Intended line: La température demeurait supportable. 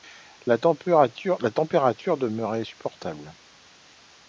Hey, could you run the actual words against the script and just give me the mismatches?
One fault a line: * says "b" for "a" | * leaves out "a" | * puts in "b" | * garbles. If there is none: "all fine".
all fine